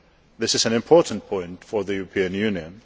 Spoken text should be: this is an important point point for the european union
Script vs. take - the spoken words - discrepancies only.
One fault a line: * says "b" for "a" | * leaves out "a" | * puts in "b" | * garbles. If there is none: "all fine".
* leaves out "point"